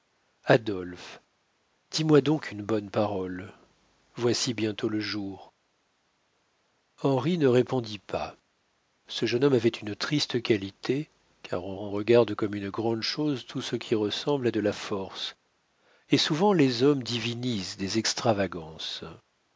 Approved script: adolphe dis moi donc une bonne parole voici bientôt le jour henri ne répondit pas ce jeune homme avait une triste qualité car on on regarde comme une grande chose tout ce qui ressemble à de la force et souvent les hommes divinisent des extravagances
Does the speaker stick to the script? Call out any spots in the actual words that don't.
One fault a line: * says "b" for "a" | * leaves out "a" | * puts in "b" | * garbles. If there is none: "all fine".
all fine